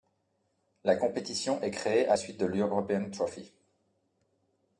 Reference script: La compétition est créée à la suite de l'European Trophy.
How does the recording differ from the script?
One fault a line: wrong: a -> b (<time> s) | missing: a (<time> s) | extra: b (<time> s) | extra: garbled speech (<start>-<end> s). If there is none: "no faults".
missing: la (2.1 s)